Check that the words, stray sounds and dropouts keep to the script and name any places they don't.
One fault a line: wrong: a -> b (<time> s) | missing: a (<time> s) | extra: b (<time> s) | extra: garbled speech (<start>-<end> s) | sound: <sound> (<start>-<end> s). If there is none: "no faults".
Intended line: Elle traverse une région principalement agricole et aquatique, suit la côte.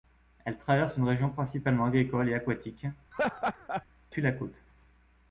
sound: laugh (3.1-3.9 s)